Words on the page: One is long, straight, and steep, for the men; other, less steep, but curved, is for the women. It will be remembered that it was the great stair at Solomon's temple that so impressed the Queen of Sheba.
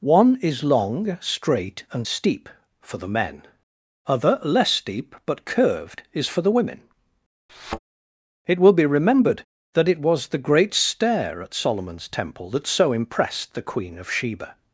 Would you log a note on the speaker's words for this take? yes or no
no